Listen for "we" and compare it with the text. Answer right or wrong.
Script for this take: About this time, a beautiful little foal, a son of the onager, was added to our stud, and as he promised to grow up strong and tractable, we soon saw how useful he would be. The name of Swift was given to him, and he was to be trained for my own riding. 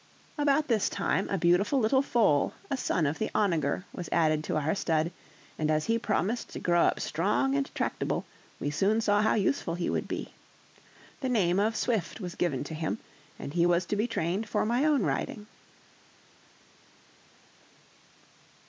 right